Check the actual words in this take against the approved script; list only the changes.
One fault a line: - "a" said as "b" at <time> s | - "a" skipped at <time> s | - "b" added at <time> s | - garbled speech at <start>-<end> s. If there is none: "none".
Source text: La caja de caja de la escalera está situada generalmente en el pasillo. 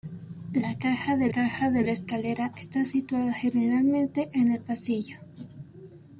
none